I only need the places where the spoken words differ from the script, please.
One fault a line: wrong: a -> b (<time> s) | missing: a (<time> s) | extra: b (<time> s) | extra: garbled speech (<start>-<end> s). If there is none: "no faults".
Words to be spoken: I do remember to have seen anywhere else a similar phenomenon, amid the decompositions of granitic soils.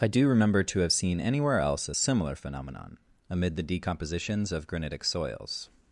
no faults